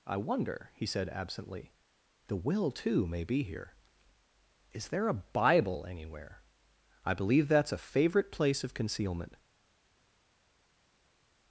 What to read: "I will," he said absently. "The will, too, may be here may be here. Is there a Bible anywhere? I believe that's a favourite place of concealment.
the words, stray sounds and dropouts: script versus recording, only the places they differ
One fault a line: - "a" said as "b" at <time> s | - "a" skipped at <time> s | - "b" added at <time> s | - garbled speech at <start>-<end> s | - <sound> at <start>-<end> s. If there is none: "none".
- "will" said as "wonder" at 0.2 s
- "may be here" skipped at 3.8 s